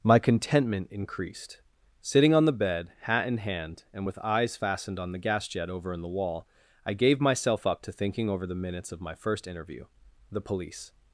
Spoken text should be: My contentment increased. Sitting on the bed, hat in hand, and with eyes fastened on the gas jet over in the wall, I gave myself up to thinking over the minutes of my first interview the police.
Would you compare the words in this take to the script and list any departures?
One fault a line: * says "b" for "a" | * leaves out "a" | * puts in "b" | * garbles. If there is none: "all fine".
all fine